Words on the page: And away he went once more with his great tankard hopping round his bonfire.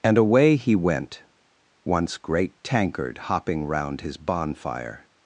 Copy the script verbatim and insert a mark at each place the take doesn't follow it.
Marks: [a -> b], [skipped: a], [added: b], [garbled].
And away he went once [skipped: more with his] great tankard hopping round his bonfire.